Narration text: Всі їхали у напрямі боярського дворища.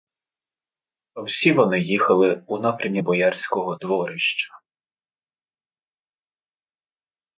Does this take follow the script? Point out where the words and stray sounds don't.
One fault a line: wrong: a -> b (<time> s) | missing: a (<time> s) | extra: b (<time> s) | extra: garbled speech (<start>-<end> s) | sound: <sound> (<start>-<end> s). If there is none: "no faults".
extra: вони (1.5 s)